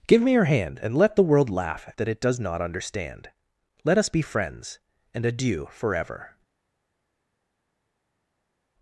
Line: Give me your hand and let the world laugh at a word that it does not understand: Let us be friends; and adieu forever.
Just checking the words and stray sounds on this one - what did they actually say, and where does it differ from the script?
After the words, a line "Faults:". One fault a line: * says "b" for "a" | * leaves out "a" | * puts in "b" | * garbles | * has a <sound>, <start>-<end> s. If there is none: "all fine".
Give me your hand and let the world laugh that it does not understand: Let us be friends; and adieu forever.
Faults:
* leaves out "at a word"